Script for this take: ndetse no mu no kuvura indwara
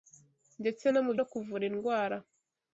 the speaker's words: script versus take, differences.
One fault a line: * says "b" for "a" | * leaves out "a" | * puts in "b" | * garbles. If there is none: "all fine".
all fine